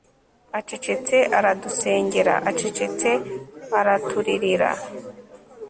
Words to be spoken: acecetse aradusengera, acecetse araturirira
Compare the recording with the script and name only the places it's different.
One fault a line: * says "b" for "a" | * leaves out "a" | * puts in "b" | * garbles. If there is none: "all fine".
all fine